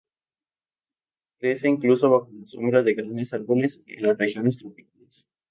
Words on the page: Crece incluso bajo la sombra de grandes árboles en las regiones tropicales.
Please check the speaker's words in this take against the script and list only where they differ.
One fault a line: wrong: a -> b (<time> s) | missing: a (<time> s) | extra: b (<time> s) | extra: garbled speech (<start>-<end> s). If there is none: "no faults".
no faults